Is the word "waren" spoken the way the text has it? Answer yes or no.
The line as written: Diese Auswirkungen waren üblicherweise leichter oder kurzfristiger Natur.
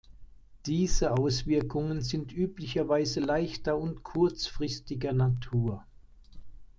no